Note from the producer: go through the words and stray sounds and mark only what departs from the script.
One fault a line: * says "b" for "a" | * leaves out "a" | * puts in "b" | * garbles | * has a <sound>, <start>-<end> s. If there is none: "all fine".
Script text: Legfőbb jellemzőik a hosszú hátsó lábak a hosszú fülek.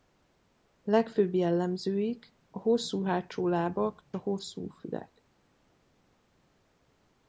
all fine